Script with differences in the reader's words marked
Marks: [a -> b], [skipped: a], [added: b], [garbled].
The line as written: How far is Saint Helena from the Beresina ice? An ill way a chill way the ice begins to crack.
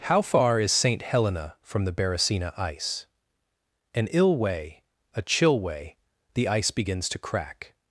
How far is Saint Helena from the Beresina ice? An ill way a chill way the ice begins to crack.